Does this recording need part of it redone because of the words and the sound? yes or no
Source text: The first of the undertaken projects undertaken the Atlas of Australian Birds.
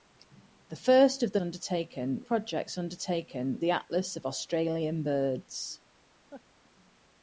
yes